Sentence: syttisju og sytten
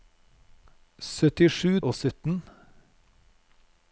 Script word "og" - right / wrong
right